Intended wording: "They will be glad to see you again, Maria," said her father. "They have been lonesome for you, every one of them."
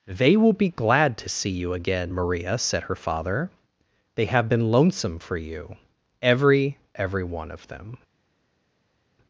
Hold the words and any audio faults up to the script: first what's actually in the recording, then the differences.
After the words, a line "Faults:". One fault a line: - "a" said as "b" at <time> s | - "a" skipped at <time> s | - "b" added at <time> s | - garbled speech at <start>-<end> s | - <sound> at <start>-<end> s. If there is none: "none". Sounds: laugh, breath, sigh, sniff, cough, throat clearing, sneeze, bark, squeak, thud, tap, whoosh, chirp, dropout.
"They will be glad to see you again, Maria," said her father. "They have been lonesome for you, every every one of them."
Faults:
- "every" added at 6.9 s